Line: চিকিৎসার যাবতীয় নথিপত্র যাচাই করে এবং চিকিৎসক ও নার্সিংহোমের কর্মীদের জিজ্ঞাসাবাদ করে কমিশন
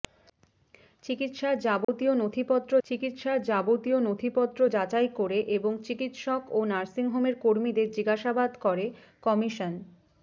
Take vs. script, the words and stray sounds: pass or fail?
fail